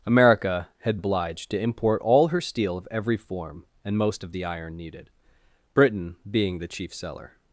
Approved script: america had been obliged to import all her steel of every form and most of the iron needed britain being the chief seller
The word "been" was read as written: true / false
false